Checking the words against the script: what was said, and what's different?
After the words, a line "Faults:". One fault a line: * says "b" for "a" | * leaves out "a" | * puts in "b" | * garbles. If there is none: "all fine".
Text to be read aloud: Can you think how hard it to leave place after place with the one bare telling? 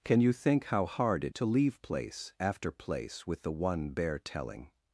Can you think how hard it to leave place after place with the one bare telling?
Faults:
all fine